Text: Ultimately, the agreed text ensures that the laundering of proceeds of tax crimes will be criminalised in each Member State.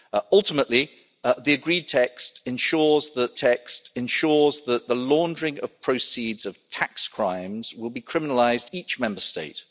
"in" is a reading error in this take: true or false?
true